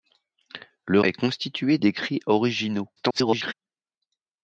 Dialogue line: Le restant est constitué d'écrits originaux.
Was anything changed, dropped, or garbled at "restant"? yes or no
yes